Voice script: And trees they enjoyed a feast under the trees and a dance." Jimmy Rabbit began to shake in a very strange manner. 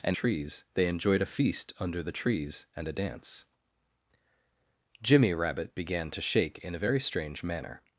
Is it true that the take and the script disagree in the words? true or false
false